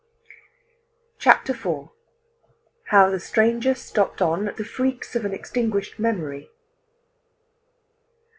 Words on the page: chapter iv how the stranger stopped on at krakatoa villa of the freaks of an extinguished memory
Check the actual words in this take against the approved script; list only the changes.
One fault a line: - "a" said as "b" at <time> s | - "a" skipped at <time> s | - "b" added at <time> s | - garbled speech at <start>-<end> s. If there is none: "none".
- "krakatoa villa of" skipped at 4.5 s